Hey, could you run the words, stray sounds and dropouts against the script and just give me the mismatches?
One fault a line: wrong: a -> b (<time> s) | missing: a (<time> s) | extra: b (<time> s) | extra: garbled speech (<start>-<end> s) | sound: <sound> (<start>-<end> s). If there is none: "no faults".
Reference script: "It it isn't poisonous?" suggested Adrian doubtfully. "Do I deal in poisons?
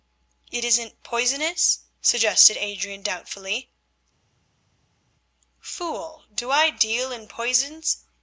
missing: it (0.7 s)
extra: Fool (5.6 s)